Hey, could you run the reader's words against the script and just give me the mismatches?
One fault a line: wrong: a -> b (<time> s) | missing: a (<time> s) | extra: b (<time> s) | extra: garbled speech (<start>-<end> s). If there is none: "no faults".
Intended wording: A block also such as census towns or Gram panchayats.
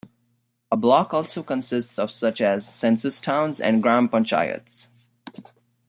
extra: consists of (1.4 s)
wrong: or -> and (3.6 s)